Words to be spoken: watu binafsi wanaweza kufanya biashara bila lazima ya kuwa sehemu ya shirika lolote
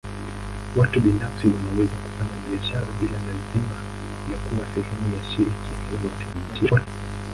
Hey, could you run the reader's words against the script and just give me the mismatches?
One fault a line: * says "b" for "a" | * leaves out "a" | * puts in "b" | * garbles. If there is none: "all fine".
* garbles